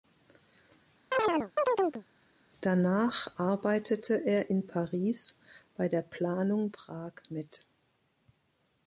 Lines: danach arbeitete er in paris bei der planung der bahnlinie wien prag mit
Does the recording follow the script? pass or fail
fail